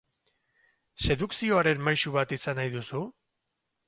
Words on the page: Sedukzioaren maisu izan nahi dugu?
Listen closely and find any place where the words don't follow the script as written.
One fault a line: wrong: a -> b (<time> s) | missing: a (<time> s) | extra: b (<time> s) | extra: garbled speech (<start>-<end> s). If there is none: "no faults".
extra: bat (2.1 s)
wrong: dugu -> duzu (2.8 s)